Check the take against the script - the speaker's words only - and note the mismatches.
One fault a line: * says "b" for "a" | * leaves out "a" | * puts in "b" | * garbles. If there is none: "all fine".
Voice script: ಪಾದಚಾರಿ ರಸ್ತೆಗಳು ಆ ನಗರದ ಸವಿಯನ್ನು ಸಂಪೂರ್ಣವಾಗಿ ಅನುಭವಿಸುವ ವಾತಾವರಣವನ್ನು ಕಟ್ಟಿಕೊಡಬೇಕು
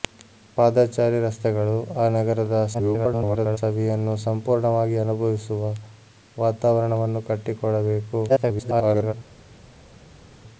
* garbles
* garbles